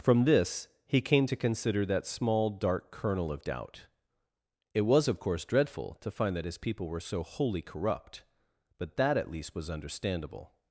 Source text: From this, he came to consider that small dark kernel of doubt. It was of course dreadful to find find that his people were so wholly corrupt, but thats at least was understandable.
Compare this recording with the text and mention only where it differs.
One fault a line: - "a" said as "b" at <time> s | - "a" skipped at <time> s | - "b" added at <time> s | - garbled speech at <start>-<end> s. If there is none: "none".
- "find" skipped at 6.4 s
- "thats" said as "that" at 9.0 s